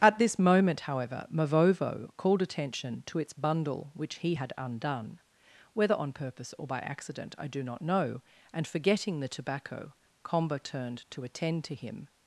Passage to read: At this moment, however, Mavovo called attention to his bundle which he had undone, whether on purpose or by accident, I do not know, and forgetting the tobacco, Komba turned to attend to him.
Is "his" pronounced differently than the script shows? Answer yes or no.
yes